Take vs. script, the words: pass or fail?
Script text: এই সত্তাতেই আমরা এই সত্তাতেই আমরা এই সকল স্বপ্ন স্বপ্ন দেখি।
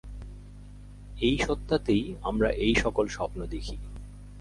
fail